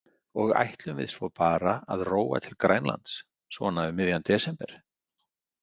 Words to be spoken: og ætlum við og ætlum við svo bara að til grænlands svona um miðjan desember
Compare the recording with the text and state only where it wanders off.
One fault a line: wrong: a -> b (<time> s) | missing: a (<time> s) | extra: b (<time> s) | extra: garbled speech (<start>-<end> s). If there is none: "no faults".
missing: og ætlum við (1.1 s)
extra: róa (2.1 s)